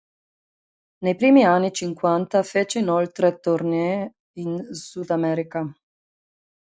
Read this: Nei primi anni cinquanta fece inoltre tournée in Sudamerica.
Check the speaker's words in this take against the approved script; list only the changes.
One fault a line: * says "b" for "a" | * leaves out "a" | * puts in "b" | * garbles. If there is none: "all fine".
all fine